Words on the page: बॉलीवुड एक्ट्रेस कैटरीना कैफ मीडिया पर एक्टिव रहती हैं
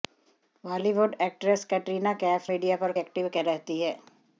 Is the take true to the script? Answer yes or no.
yes